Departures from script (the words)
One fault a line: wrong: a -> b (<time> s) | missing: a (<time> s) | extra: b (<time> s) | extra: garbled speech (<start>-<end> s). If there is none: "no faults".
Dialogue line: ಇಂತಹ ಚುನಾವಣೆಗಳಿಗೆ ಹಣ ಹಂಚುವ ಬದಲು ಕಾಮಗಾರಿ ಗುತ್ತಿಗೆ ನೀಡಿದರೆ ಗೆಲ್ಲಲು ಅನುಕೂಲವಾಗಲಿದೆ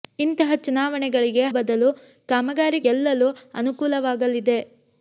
missing: ಹಣ ಹಂಚುವ (1.4 s)
missing: ಗುತ್ತಿಗೆ ನೀಡಿದರೆ (2.8 s)